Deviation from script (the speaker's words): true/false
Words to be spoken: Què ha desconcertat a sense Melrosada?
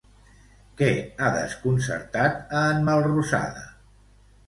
true